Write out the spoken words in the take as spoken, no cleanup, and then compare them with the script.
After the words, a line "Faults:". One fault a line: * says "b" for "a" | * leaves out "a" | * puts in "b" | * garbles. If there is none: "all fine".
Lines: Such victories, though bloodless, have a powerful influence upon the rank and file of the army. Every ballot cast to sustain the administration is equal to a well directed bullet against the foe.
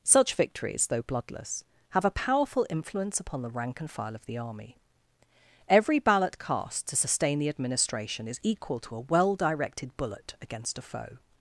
Such victories, though bloodless, have a powerful influence upon the rank and file of the army. Every ballot cast to sustain the administration is equal to a well directed bullet against a foe.
Faults:
* says "a" for "the"